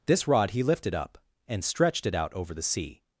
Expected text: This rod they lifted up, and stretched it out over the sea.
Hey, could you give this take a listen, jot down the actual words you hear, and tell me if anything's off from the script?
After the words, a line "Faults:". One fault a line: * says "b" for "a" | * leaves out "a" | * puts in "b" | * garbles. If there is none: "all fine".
This rod he lifted up, and stretched it out over the sea.
Faults:
* says "he" for "they"